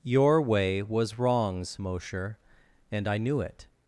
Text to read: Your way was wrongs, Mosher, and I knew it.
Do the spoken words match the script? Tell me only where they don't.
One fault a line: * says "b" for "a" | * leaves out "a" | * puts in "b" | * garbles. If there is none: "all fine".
all fine